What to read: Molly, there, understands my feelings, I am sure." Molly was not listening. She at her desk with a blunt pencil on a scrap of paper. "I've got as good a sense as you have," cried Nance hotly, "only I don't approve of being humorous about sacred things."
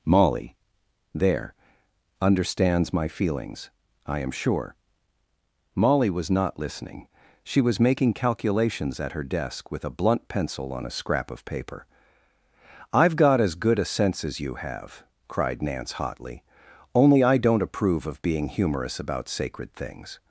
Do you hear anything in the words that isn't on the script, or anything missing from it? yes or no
yes